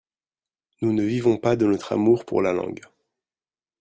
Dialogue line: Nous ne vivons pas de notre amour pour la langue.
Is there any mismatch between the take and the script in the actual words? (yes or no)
no